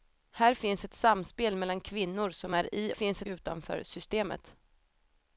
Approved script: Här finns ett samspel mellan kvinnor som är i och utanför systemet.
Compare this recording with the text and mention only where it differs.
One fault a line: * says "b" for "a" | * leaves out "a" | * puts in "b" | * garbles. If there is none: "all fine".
* says "finns" for "och"